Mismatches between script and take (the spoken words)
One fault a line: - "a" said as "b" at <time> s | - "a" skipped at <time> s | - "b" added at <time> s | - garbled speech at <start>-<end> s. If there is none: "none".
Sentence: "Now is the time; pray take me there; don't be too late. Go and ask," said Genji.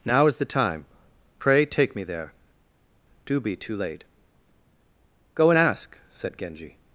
- "don't" said as "do" at 3.3 s